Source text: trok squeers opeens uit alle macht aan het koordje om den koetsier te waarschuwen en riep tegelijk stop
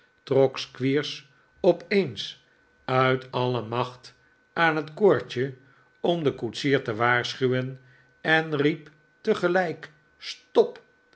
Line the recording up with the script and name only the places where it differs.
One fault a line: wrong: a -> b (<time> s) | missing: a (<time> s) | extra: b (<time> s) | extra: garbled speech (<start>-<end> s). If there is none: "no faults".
no faults